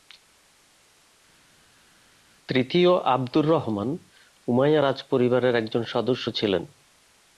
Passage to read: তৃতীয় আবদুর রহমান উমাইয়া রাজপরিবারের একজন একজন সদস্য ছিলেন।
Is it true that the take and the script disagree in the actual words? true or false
true